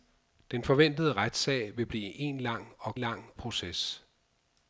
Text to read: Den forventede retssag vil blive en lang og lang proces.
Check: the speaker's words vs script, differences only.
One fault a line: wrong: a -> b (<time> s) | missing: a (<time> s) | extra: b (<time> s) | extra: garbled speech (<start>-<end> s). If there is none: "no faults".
no faults